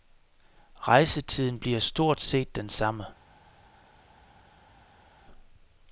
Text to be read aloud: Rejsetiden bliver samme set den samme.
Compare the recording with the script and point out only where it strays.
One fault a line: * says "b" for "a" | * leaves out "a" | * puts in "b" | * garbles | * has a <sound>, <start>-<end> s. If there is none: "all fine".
* says "stort" for "samme"